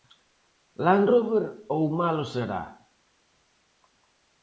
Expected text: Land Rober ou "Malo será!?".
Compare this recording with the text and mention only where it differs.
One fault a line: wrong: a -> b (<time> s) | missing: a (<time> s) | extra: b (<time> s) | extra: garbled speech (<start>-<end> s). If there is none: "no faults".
no faults